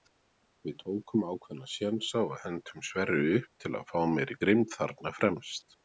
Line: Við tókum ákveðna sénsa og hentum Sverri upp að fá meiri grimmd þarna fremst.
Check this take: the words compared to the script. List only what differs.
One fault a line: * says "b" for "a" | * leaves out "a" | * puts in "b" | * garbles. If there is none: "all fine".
* puts in "til"